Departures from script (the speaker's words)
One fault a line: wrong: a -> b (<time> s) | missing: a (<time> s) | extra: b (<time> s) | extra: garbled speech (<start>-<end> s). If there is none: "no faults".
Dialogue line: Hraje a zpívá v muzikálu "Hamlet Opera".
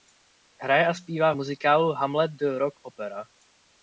extra: The rock (2.4 s)